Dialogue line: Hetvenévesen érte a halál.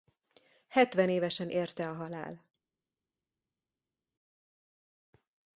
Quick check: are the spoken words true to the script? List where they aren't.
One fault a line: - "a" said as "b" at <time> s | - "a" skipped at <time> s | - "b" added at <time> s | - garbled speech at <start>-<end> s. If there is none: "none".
none